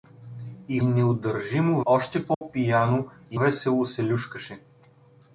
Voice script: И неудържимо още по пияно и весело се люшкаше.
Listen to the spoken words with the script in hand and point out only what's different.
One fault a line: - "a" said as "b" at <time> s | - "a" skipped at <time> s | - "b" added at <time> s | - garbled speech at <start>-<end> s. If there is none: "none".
none